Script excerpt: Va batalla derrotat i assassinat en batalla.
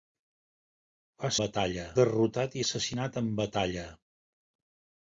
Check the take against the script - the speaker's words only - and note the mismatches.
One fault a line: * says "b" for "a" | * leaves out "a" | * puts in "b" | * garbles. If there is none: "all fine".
all fine